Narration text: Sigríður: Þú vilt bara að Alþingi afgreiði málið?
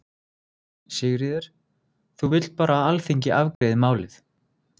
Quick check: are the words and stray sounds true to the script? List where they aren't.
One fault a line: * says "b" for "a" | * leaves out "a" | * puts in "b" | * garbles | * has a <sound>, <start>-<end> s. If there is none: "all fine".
* has a dropout, 3.5-3.6 s